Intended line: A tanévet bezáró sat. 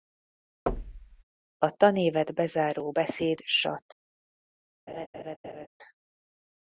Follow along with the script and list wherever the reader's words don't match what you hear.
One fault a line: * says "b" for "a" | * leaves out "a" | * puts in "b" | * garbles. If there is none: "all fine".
* puts in "beszéd"